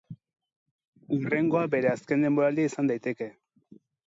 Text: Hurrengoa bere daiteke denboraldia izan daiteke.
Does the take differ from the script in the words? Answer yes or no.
yes